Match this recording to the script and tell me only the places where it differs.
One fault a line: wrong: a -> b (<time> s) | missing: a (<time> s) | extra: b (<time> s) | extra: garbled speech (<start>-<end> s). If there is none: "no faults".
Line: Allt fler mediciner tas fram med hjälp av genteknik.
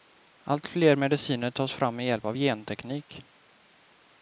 no faults